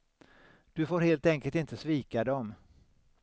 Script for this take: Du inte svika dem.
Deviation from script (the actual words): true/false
true